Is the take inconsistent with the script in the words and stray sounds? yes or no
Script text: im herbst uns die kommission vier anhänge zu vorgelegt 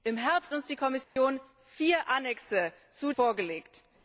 yes